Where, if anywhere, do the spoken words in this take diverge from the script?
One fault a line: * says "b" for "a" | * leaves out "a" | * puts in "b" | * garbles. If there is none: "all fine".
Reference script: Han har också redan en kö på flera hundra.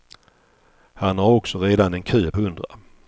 * leaves out "på flera"